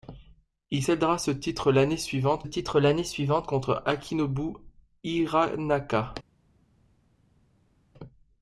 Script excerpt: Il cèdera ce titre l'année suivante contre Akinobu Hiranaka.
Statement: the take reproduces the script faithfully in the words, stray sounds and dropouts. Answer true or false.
false